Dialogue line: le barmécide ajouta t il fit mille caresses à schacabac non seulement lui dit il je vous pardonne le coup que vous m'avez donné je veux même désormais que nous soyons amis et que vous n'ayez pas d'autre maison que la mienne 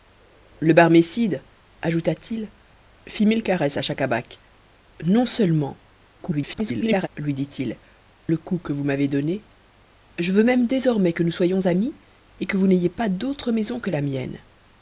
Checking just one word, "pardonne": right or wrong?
wrong